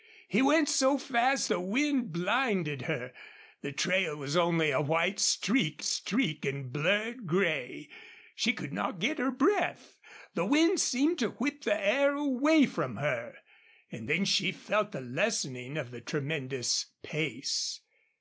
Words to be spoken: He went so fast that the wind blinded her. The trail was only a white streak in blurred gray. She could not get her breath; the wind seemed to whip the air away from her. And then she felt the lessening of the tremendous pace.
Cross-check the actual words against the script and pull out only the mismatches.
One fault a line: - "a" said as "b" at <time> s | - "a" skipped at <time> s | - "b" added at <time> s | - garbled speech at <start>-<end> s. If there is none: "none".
- "that" skipped at 1.5 s
- "streak" added at 5.8 s